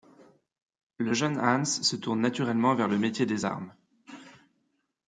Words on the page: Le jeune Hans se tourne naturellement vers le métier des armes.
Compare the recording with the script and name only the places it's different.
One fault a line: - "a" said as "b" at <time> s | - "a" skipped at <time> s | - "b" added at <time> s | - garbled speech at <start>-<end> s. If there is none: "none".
none